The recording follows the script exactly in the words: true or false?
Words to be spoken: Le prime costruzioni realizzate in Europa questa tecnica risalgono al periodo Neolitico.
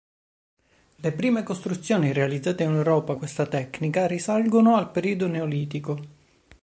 true